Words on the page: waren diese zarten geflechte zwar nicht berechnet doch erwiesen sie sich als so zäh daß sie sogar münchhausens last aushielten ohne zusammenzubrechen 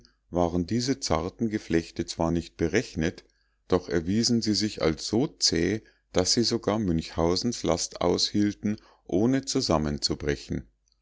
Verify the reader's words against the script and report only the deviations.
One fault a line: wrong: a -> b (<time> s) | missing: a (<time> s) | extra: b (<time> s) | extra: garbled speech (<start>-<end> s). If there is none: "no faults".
no faults